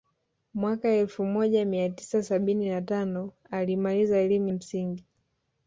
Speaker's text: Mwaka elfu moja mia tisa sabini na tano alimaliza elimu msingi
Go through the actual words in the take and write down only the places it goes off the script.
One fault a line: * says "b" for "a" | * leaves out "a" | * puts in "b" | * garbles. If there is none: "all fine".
all fine